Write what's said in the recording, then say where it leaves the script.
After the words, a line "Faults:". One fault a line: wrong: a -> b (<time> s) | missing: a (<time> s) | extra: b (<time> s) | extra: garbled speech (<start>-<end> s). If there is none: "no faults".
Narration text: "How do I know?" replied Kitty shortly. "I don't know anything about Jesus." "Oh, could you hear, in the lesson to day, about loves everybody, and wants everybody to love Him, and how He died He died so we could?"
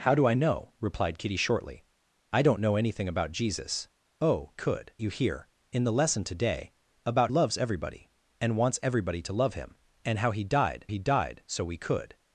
"How do I know?" replied Kitty shortly. "I don't know anything about Jesus." "Oh, could you hear, in the lesson to day, about loves everybody, and wants everybody to love Him, and how He died He died so we could?"
Faults:
no faults